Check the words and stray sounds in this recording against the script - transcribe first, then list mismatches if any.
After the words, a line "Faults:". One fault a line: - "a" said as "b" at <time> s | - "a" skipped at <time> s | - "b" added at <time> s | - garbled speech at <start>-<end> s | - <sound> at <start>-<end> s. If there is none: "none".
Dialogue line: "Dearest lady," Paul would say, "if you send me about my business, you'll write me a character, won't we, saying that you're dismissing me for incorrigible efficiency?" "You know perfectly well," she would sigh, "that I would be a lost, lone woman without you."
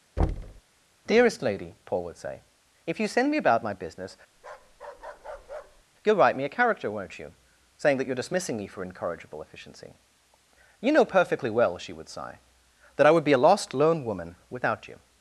"Dearest lady," Paul would say, "if you send me about my business, you'll write me a character, won't you, saying that you're dismissing me for incorrigible efficiency?" "You know perfectly well," she would sigh, "that I would be a lost, lone woman without you."
Faults:
- thud at 0.2-0.6 s
- bark at 4.4-5.8 s
- "we" said as "you" at 7.2 s